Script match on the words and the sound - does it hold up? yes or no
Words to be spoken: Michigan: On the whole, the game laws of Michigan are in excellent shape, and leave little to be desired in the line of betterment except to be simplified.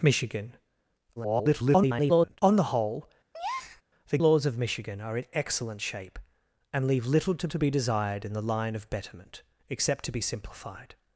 no